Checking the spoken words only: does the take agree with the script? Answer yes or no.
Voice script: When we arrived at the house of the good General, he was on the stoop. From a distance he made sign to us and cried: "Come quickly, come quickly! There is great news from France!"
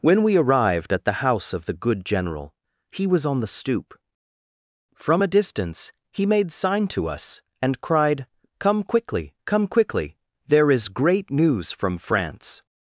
yes